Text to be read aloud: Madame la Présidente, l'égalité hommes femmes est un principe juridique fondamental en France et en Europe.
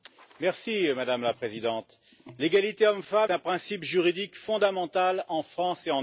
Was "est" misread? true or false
true